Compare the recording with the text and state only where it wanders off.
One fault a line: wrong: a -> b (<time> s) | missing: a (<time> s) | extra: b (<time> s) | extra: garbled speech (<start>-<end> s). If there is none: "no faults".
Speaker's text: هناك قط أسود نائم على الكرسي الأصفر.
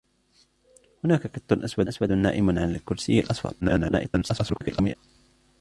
extra: أسود (1.9 s)
extra: garbled speech (3.6-5.0 s)